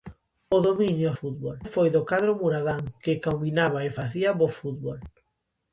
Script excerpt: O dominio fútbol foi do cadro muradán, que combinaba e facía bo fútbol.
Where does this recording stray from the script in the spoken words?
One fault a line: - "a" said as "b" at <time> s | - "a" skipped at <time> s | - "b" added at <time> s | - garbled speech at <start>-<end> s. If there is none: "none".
none